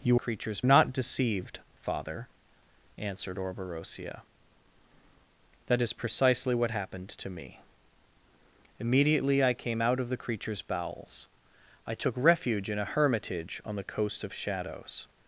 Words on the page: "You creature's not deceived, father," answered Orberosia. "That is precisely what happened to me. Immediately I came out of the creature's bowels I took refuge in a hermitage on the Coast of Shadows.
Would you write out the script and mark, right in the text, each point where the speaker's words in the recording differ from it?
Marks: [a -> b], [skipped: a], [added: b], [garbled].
"You creature's not deceived, father," answered Orberosia. "That is precisely what happened to me. Immediately I came out of the creature's bowels I took refuge in a hermitage on the Coast of Shadows.